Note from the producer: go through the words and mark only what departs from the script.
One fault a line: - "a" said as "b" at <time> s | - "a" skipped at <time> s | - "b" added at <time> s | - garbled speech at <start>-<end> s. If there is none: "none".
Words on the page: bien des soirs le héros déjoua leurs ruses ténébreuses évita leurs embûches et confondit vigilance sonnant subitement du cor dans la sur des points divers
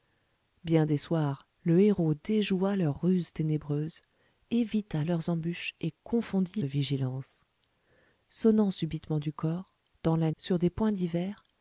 none